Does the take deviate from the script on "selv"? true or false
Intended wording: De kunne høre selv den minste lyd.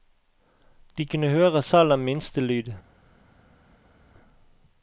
false